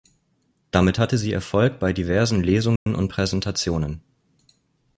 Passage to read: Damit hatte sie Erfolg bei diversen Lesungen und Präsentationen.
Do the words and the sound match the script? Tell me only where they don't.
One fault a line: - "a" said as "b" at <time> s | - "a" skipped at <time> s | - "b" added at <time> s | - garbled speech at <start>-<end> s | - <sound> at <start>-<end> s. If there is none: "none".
- dropout at 2.8-2.9 s